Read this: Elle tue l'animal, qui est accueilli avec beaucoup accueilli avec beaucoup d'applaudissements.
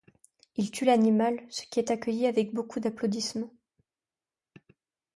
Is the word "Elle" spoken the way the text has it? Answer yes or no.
no